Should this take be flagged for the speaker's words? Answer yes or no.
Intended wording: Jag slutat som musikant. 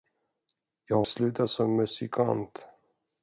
no